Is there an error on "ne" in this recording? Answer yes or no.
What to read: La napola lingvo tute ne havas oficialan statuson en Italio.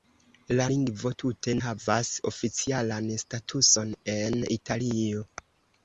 yes